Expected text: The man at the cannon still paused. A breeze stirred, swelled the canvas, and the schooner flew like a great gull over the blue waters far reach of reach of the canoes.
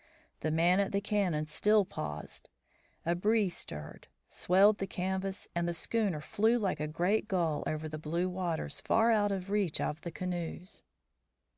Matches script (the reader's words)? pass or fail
fail